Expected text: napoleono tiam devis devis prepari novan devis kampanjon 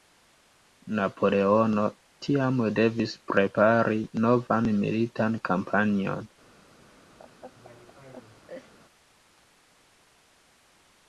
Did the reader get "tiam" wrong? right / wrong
right